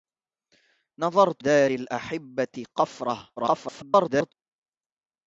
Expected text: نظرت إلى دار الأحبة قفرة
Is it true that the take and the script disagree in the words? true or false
true